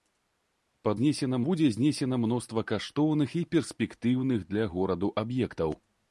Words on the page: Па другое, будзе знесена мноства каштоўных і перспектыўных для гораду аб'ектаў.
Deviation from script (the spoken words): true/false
true